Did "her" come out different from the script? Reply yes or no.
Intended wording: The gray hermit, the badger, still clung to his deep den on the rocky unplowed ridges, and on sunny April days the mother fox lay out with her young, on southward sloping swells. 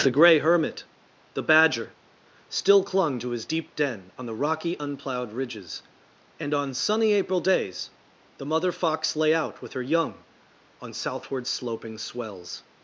no